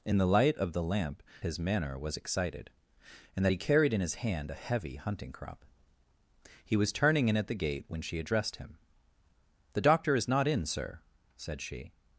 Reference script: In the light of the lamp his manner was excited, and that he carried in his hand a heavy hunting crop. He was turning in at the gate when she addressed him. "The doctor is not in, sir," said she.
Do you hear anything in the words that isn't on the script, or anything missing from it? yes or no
no